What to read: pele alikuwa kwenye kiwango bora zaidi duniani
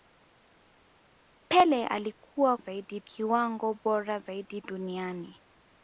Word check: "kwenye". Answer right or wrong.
wrong